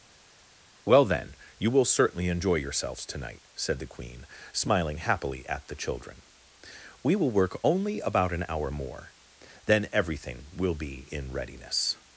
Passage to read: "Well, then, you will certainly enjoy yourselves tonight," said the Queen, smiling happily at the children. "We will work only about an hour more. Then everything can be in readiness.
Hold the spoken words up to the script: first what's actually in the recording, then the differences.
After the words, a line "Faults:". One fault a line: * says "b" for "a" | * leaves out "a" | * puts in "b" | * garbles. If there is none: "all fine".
"Well, then, you will certainly enjoy yourselves tonight," said the Queen, smiling happily at the children. "We will work only about an hour more. Then everything will be in readiness.
Faults:
* says "will" for "can"